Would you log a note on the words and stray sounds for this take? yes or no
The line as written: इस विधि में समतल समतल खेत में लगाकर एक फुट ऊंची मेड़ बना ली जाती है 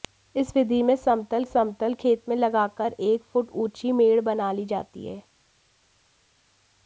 no